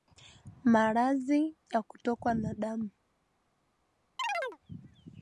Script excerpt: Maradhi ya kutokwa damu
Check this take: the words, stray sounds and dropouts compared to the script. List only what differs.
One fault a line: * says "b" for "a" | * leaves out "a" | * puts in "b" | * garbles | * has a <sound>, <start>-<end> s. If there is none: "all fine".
* puts in "na"
* has a chirp, 4.2-4.6 s